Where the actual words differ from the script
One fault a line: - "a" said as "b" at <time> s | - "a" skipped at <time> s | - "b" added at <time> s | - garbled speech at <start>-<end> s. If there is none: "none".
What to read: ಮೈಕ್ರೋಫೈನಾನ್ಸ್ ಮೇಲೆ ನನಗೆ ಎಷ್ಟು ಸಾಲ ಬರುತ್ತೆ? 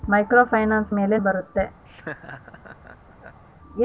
- "ನನಗೆ ಎಷ್ಟು ಸಾಲ" skipped at 1.2 s